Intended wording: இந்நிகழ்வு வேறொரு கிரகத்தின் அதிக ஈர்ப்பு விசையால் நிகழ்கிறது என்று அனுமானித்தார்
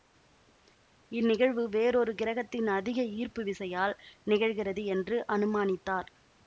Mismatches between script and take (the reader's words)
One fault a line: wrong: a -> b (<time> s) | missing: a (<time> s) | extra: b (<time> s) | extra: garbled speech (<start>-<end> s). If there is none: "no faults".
no faults